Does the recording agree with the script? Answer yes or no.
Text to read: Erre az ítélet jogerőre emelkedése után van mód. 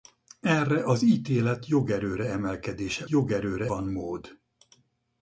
no